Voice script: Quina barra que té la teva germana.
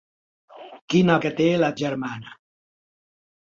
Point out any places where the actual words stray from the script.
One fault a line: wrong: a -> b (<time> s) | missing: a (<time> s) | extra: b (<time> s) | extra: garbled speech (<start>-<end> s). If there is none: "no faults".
missing: barra (1.2 s)
missing: teva (1.7 s)